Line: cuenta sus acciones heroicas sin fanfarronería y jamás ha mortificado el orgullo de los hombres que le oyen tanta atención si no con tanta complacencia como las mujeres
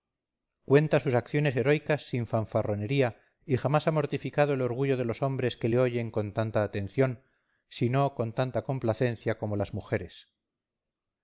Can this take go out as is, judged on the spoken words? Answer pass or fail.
fail